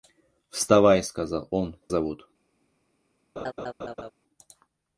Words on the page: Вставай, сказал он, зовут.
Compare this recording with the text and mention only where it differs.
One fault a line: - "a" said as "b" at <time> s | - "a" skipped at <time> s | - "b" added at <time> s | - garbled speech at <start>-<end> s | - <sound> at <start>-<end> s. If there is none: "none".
- laugh at 3.4-4.1 s